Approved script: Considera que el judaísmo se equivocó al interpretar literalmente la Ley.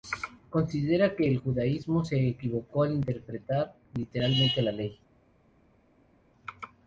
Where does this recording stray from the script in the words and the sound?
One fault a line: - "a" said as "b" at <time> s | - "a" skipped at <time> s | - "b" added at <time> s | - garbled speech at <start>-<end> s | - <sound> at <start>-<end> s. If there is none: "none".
none